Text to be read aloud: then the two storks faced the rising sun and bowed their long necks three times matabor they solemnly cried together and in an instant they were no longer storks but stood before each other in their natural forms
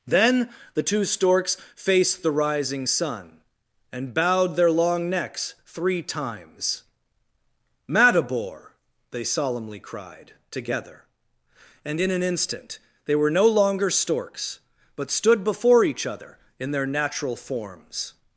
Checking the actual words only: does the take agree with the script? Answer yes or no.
yes